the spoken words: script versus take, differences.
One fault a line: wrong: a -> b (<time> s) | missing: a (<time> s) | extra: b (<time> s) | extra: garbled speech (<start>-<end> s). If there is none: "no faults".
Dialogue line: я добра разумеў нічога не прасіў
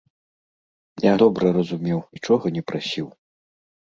no faults